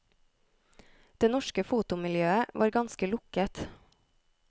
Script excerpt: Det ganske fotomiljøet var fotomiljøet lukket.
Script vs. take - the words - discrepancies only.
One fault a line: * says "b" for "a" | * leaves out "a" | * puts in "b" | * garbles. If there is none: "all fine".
* says "norske" for "ganske"
* says "ganske" for "fotomiljøet"